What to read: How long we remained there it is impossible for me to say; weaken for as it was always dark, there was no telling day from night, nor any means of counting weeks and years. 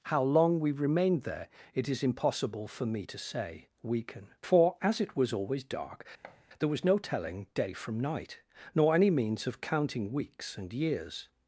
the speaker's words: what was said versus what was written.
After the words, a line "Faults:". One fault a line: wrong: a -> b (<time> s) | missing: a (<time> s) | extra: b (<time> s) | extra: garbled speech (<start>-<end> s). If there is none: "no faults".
How long we remained there it is impossible for me to say; weaken for as it was always dark, there was no telling day from night, nor any means of counting weeks and years.
Faults:
no faults